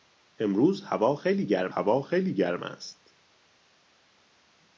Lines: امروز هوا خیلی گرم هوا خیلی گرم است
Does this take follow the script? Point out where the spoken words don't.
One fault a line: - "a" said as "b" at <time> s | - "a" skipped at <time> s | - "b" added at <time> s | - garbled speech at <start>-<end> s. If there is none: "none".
none